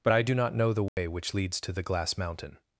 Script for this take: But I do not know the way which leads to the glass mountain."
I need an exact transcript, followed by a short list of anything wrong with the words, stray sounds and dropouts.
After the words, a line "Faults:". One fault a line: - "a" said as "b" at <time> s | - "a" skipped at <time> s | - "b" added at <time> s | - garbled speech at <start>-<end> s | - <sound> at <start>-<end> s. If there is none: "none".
But I do not know the way which leads to the glass mountain."
Faults:
- dropout at 0.9-1.0 s